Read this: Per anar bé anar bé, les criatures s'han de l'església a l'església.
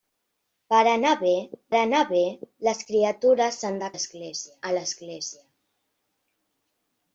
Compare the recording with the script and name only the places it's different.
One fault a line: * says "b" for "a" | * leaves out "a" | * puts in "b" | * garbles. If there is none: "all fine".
all fine